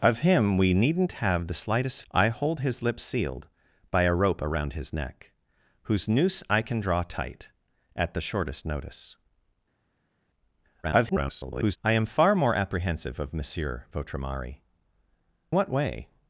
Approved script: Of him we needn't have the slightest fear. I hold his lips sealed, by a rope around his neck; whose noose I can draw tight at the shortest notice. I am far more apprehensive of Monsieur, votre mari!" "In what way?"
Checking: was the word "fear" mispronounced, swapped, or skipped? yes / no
yes